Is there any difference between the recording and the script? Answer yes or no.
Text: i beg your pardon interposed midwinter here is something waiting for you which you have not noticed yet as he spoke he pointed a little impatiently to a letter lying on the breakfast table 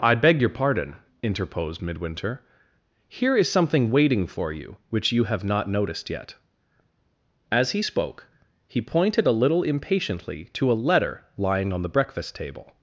no